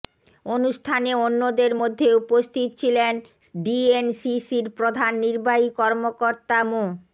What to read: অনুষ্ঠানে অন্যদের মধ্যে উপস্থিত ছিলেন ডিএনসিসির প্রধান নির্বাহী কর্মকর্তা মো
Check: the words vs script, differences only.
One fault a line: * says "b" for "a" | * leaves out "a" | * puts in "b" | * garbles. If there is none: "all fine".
all fine